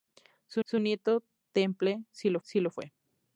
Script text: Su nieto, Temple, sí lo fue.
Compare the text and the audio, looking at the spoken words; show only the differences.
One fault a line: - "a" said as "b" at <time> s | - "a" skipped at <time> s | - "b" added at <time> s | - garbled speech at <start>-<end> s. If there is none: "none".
- "su" added at 0.6 s
- "sí lo" added at 2.4 s